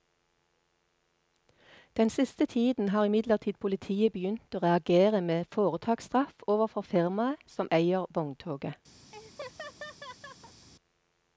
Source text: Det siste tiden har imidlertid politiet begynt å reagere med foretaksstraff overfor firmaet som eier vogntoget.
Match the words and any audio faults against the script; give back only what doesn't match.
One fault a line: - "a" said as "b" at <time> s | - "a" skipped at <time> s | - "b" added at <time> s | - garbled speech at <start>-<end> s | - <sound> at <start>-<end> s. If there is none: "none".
- "Det" said as "Den" at 2.0 s
- laugh at 9.1-10.7 s